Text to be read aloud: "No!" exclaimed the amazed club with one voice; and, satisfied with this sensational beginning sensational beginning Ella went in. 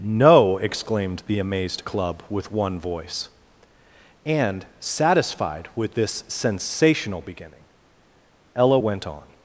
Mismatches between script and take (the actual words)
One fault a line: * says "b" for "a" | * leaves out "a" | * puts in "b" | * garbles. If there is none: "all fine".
* leaves out "sensational beginning"
* says "on" for "in"